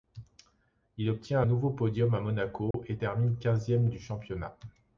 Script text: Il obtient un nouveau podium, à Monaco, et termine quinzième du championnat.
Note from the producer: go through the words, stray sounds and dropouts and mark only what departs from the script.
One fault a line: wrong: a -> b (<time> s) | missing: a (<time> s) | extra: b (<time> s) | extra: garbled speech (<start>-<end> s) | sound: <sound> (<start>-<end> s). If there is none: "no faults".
missing: un (1.4 s)
sound: dropout (2.7-2.7 s)